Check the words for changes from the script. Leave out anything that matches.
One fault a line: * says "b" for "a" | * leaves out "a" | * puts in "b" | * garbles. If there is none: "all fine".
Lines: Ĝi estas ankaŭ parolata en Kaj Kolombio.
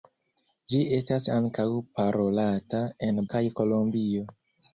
all fine